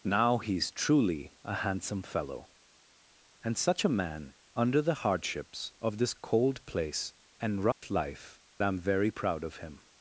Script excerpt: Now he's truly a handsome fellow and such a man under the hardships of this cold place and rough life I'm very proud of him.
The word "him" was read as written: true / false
true